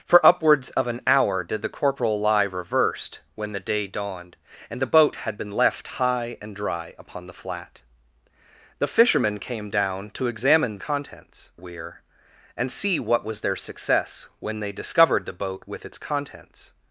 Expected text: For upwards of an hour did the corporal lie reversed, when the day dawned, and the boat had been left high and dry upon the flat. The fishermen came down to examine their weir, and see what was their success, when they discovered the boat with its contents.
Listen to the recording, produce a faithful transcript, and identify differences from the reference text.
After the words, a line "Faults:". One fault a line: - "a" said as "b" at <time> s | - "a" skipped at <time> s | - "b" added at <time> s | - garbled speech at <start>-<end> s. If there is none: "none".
For upwards of an hour did the corporal lie reversed, when the day dawned, and the boat had been left high and dry upon the flat. The fishermen came down to examine contents weir, and see what was their success, when they discovered the boat with its contents.
Faults:
- "their" said as "contents" at 10.8 s